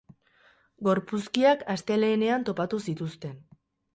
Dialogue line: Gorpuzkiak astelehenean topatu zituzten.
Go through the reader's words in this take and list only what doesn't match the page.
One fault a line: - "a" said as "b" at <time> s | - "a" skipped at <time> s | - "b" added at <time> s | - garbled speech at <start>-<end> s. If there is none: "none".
none